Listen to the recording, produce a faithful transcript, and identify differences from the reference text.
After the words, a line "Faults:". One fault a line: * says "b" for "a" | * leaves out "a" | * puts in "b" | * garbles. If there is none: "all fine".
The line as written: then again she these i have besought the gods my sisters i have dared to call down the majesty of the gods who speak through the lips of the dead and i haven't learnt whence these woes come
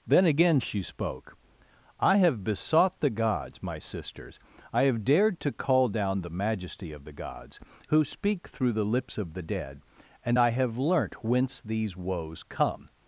then again she spoke i have besought the gods my sisters i have dared to call down the majesty of the gods who speak through the lips of the dead and i have learnt whence these woes come
Faults:
* says "spoke" for "these"
* says "have" for "haven't"